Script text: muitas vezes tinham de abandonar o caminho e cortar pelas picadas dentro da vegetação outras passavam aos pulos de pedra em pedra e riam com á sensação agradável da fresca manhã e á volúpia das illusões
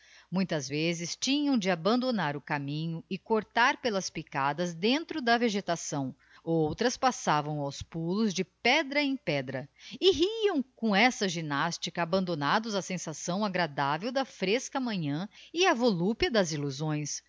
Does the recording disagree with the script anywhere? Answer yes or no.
yes